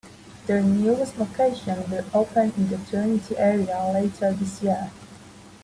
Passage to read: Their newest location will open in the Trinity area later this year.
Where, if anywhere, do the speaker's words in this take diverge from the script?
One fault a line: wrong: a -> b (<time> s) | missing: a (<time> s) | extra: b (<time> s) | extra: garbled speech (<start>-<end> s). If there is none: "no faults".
no faults